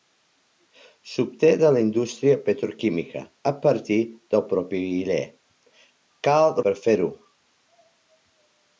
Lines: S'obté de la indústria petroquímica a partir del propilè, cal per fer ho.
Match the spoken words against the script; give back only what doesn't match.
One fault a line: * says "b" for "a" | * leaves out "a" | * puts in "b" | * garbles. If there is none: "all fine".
all fine